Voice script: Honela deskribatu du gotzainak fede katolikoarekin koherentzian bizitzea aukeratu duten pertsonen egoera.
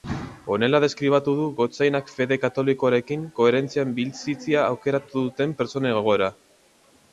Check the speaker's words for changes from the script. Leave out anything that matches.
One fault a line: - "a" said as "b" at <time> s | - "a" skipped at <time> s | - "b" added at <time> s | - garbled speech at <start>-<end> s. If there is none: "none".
none